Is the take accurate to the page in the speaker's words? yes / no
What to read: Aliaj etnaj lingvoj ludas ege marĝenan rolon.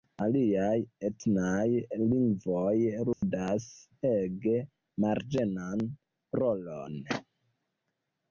yes